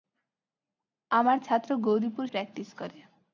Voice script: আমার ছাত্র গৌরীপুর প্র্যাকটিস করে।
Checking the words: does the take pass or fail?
pass